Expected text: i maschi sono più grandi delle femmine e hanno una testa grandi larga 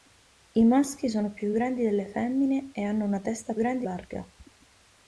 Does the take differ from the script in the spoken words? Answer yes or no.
no